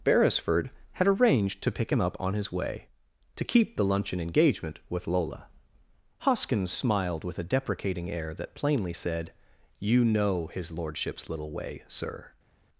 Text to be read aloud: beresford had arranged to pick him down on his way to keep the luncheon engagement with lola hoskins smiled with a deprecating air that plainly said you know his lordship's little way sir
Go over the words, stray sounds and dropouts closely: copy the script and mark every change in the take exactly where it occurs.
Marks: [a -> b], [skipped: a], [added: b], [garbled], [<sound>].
beresford had arranged to pick him [down -> up] on his way to keep the luncheon engagement with lola hoskins smiled with a deprecating air that plainly said you know his lordship's little way sir